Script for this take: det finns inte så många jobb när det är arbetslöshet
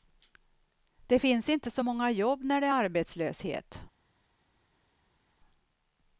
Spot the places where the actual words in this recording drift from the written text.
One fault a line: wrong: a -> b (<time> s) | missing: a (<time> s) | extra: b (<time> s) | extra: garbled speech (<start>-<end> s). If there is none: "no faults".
no faults